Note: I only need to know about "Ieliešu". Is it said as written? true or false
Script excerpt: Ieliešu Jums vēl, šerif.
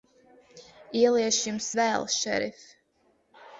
true